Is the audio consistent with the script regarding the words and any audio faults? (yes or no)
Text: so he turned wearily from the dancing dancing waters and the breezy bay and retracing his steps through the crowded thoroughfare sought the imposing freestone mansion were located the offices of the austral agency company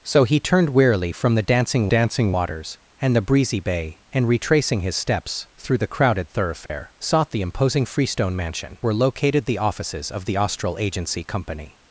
no